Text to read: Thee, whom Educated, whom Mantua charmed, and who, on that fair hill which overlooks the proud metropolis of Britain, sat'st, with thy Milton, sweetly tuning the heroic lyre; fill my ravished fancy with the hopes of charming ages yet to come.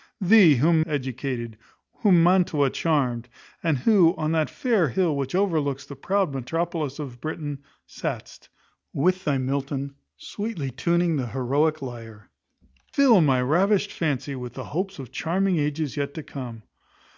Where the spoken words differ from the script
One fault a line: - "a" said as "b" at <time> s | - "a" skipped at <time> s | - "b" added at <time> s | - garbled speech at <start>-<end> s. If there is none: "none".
none